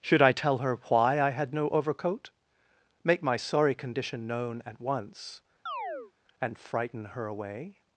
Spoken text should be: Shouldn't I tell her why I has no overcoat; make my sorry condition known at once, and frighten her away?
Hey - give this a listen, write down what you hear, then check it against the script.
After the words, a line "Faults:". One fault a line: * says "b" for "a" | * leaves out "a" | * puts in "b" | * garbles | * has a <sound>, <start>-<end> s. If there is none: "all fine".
Should I tell her why I had no overcoat; make my sorry condition known at once, and frighten her away?
Faults:
* says "Should" for "Shouldn't"
* says "had" for "has"
* has a chirp, 5.7-6.1 s